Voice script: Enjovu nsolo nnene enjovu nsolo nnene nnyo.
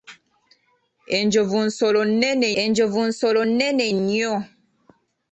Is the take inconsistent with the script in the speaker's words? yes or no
no